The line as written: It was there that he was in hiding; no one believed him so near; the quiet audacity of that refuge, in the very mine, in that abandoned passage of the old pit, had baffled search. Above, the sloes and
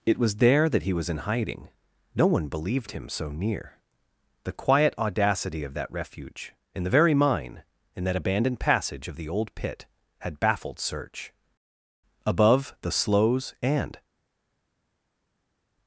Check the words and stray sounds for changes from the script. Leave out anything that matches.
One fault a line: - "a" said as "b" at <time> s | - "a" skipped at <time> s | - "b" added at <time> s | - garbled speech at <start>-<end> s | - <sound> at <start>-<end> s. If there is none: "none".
none